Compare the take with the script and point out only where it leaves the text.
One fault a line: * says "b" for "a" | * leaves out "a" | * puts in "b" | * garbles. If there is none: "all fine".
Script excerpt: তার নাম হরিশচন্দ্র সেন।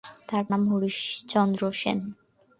all fine